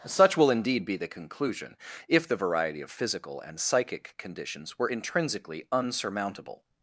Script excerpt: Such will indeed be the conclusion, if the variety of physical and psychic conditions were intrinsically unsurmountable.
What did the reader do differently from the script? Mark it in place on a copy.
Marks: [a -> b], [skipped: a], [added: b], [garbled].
Such will indeed be the conclusion, if the variety of physical and psychic conditions were intrinsically unsurmountable.